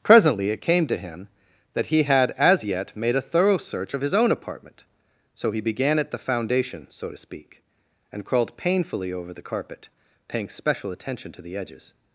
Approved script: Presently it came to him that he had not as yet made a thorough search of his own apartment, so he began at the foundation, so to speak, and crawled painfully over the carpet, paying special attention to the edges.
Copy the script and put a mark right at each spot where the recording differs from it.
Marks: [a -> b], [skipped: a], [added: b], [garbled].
Presently it came to him that he had [skipped: not] as yet made a thorough search of his own apartment, so he began at the foundation, so to speak, and crawled painfully over the carpet, paying special attention to the edges.